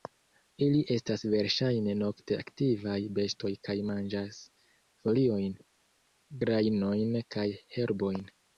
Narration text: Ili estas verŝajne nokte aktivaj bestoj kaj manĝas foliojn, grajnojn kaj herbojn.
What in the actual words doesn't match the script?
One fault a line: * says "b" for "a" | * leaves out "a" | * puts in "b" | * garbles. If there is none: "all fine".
all fine